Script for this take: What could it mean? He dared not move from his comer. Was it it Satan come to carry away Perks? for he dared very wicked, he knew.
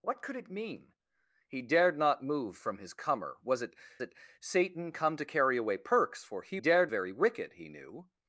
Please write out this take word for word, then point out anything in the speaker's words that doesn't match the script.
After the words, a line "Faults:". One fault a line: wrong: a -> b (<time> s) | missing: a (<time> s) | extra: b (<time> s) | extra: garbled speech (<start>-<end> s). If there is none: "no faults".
What could it mean? He dared not move from his comer. Was it it Satan come to carry away Perks? for he dared very wicked, he knew.
Faults:
no faults